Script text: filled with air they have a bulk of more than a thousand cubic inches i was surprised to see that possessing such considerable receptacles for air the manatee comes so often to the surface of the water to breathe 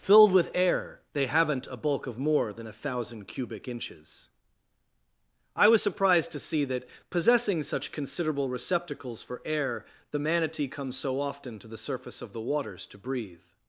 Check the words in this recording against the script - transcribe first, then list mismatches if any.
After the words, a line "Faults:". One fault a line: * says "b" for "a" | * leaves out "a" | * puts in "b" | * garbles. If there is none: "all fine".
filled with air they haven't a bulk of more than a thousand cubic inches i was surprised to see that possessing such considerable receptacles for air the manatee comes so often to the surface of the waters to breathe
Faults:
* says "haven't" for "have"
* says "waters" for "water"